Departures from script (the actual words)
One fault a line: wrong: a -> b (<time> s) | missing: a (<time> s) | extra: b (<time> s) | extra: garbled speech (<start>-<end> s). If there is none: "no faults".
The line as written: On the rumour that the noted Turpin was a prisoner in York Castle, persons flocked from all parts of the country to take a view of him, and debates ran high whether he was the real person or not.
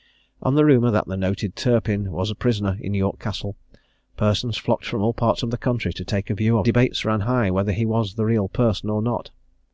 missing: him and (6.7 s)